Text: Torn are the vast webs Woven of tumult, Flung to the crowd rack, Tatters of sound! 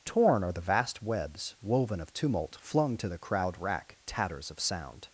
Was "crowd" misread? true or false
false